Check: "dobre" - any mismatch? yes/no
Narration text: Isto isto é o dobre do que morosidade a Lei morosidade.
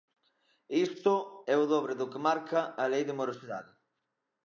no